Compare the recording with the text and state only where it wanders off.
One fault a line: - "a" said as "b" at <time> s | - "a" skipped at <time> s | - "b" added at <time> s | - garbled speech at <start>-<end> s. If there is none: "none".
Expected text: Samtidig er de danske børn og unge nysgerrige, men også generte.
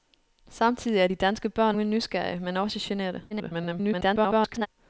- "og" skipped at 1.8 s
- garbled speech at 3.3-4.7 s